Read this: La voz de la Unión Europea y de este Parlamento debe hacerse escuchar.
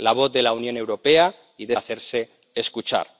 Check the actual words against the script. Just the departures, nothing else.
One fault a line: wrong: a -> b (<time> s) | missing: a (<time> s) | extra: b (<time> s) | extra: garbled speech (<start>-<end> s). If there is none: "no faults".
missing: este Parlamento debe (1.8 s)